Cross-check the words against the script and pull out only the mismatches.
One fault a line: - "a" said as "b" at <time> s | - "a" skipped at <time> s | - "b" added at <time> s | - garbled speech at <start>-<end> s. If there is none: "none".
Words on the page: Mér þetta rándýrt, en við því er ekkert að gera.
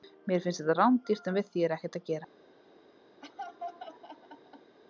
- "finnst" added at 0.5 s